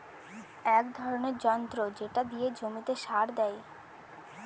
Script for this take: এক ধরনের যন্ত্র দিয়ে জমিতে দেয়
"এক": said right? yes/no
yes